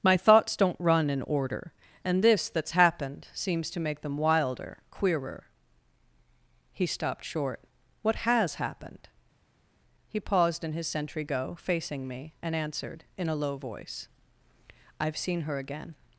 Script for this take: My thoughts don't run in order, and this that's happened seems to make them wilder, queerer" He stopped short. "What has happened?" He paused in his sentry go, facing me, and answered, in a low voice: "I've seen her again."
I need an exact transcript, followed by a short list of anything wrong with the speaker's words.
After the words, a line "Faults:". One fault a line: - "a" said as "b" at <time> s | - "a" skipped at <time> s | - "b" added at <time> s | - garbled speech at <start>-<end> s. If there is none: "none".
My thoughts don't run in order, and this that's happened seems to make them wilder, queerer" He stopped short. "What has happened?" He paused in his sentry go, facing me, and answered, in a low voice: "I've seen her again."
Faults:
none